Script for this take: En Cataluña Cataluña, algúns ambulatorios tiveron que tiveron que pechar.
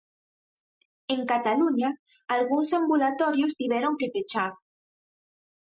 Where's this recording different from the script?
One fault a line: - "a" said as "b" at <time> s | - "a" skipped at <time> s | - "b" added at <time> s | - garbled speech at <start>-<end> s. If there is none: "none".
- "Cataluña" skipped at 1.9 s
- "tiveron que" skipped at 4.1 s